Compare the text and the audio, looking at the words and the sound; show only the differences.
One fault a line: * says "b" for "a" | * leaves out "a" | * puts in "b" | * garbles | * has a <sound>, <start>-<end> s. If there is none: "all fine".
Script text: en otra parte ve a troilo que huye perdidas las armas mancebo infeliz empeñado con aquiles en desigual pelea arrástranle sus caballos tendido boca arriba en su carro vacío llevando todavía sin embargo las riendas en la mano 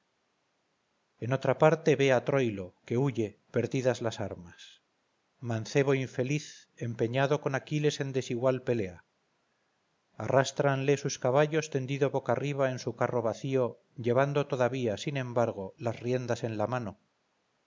all fine